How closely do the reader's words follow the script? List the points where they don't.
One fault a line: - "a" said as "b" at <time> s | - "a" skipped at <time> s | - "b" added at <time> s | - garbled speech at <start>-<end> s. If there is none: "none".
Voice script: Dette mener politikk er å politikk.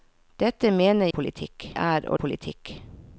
none